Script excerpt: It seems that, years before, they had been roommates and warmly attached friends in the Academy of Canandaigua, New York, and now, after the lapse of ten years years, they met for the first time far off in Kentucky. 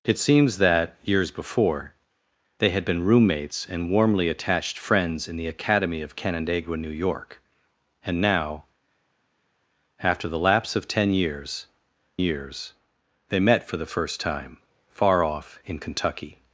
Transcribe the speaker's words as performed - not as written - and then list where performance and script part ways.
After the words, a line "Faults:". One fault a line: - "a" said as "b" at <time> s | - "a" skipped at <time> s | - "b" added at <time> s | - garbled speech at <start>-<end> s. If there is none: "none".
It seems that, years before, they had been roommates and warmly attached friends in the Academy of Canandaigua, New York, and now, after the lapse of ten years years, they met for the first time far off in Kentucky.
Faults:
none